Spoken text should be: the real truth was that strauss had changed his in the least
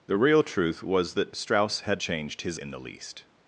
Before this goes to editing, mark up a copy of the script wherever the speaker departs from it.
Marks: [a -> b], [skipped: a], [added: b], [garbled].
the real truth was that strauss had changed his in the least